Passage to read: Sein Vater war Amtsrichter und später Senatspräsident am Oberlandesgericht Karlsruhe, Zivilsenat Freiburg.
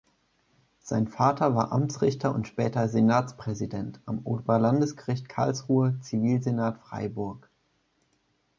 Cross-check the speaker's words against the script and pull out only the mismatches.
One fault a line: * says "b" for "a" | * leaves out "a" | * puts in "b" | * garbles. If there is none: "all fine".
all fine